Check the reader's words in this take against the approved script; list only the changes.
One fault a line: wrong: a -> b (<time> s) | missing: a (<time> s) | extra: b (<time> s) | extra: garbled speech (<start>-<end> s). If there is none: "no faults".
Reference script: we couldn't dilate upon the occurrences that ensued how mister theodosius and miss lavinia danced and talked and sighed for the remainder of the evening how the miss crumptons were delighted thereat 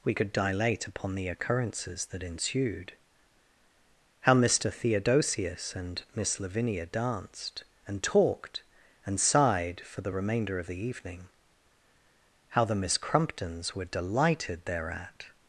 wrong: couldn't -> could (0.1 s)